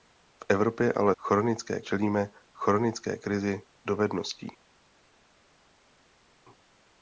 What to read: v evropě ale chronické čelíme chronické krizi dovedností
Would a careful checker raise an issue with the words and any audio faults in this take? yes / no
no